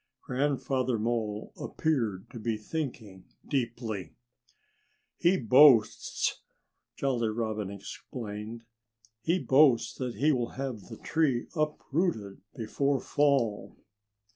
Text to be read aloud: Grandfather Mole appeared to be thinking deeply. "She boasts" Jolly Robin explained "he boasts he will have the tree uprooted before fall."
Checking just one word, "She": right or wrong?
wrong